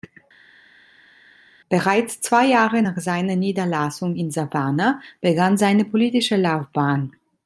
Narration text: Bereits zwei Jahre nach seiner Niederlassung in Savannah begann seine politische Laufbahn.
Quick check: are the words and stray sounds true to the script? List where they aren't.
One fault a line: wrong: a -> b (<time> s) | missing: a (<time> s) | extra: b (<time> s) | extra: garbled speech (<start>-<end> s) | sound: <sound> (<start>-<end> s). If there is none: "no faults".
no faults